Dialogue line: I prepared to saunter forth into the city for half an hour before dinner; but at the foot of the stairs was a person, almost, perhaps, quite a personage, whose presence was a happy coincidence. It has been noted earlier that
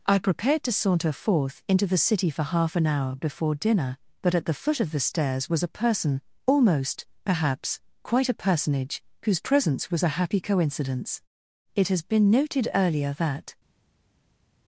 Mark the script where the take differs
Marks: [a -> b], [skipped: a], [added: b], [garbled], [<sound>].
I prepared to saunter forth into the city for half an hour before dinner; but at the foot of the stairs was a person, almost, perhaps, quite a personage, whose presence was a happy coincidence. It has been noted earlier that